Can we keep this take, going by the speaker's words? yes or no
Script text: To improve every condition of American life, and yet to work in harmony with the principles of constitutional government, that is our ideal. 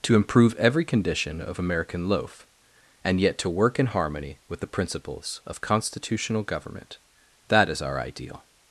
no